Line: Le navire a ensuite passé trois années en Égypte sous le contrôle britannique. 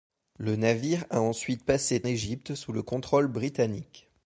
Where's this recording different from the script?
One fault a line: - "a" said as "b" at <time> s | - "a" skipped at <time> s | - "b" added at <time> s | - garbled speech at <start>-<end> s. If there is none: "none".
- "trois années en" skipped at 2.0 s